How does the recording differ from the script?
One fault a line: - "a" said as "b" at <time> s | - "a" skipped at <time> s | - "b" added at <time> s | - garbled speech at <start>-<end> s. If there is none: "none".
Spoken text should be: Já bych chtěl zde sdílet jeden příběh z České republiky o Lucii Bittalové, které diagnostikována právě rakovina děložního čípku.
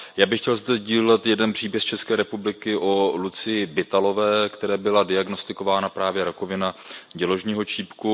- "byla" added at 4.8 s